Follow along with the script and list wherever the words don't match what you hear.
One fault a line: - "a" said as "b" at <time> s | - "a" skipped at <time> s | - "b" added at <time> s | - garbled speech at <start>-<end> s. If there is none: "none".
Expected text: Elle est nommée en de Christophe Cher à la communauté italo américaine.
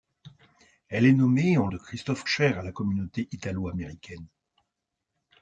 none